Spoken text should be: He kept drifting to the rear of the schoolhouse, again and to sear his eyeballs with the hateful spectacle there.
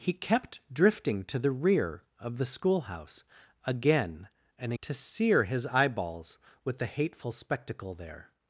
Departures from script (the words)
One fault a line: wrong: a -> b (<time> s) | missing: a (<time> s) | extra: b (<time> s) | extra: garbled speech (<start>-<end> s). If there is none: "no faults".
no faults